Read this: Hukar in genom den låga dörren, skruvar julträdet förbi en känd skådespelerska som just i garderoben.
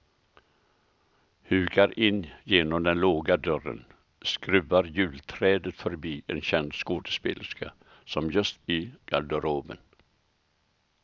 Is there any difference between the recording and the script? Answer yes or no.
no